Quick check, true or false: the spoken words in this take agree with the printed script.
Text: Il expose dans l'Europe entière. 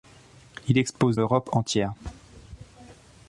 false